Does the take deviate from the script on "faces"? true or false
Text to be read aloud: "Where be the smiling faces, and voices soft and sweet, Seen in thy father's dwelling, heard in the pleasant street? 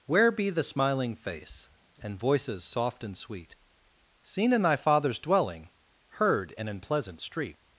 true